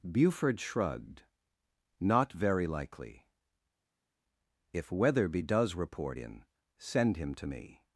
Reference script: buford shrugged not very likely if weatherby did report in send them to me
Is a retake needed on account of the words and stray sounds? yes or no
yes